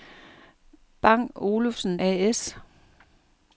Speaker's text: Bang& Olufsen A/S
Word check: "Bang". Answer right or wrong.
right